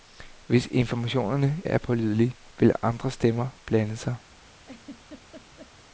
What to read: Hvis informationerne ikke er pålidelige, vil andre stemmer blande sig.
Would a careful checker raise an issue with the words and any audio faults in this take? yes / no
yes